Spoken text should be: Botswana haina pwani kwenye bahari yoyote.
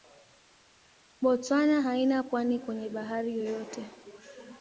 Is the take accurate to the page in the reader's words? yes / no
yes